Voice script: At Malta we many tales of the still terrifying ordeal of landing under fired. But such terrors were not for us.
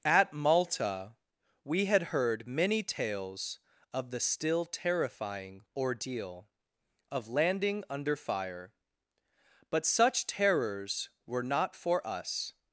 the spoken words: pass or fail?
fail